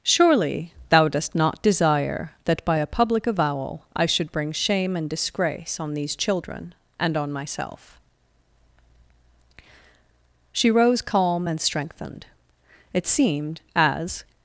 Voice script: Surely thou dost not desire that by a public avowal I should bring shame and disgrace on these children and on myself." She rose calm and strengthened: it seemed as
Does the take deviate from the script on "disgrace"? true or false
false